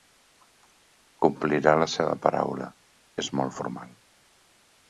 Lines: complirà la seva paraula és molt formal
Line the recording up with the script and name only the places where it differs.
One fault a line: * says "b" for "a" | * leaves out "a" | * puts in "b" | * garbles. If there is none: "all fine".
all fine